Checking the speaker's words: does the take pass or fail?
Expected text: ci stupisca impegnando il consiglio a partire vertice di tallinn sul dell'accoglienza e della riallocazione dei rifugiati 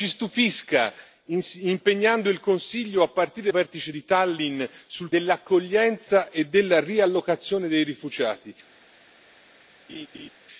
pass